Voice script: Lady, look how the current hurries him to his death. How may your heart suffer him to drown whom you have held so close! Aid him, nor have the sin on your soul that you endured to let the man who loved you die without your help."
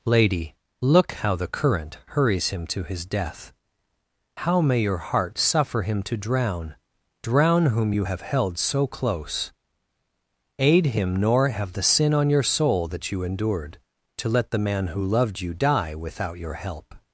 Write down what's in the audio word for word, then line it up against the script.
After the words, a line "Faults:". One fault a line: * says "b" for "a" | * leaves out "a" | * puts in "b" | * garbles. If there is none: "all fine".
Lady, look how the current hurries him to his death. How may your heart suffer him to drown drown whom you have held so close! Aid him, nor have the sin on your soul that you endured to let the man who loved you die without your help."
Faults:
* puts in "drown"